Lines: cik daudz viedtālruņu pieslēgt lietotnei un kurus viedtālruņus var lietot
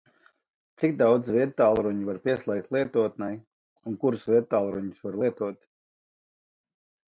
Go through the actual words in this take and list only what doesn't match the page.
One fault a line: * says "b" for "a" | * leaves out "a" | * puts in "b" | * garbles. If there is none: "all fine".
* puts in "var"